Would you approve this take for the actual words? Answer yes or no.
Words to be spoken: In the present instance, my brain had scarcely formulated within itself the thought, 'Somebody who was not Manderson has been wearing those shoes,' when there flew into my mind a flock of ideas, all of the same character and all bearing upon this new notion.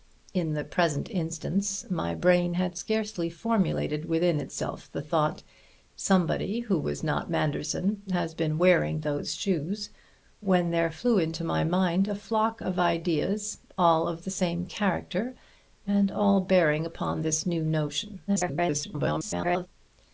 no